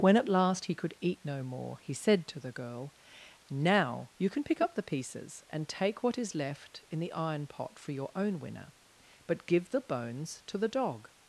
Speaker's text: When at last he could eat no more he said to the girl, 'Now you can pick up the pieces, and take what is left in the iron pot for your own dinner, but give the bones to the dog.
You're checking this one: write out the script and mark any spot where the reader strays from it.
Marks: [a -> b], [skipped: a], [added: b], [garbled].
When at last he could eat no more he said to the girl, 'Now you can pick up the pieces, and take what is left in the iron pot for your own [dinner, -> winner] but give the bones to the dog.